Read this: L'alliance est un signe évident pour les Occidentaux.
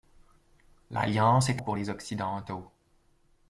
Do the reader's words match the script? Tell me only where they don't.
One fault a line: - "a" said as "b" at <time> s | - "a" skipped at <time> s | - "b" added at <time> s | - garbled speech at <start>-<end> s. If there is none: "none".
- "un signe évident" skipped at 1.6 s